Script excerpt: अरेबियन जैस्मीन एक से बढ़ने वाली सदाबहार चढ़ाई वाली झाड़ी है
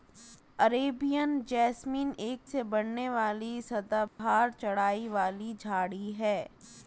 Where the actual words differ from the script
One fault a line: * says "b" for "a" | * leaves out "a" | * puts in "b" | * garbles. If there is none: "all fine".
all fine